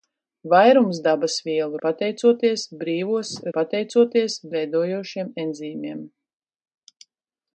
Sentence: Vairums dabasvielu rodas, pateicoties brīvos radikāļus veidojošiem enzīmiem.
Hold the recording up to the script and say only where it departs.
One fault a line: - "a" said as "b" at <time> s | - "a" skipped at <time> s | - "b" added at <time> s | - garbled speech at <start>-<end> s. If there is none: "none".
- "rodas" skipped at 1.8 s
- "radikāļus" said as "pateicoties" at 3.6 s